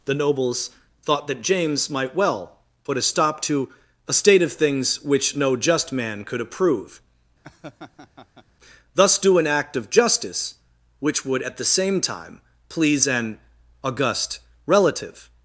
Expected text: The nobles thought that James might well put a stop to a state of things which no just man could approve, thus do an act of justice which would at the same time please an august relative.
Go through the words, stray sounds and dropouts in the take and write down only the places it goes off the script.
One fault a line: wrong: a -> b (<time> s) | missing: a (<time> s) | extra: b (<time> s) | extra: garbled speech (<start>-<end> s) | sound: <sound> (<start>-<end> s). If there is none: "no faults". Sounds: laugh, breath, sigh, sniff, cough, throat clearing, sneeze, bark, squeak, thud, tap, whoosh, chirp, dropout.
sound: laugh (7.4-8.5 s)